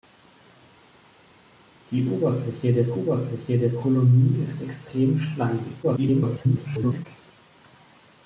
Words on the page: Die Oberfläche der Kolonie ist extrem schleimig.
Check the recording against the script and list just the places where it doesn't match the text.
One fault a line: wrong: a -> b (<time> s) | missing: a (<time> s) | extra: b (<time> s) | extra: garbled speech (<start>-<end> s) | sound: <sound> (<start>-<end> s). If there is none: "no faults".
extra: Oberfläche der (2.9 s)
extra: garbled speech (5.8-7.1 s)